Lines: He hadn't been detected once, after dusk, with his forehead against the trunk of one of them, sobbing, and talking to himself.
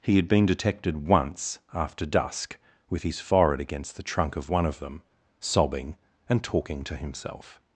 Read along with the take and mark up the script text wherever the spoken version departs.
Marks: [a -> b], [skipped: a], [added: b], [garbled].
He [hadn't -> had] been detected once, after dusk, with his forehead against the trunk of one of them, sobbing, and talking to himself.